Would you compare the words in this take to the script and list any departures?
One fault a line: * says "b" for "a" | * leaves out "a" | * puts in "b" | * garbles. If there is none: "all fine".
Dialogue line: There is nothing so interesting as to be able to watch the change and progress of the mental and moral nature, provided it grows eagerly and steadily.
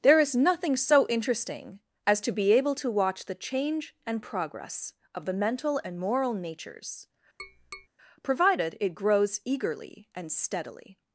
* says "natures" for "nature"